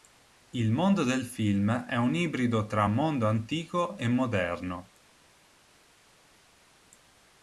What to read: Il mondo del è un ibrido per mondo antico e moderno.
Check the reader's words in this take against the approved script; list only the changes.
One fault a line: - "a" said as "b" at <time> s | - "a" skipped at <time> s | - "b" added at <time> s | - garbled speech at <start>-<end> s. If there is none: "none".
- "film" added at 1.2 s
- "per" said as "tra" at 2.6 s